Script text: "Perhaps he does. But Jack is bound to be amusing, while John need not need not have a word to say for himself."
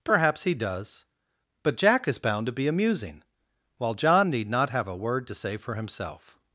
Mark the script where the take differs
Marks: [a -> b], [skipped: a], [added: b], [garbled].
"Perhaps he does. But Jack is bound to be amusing, while John need not [skipped: need not] have a word to say for himself."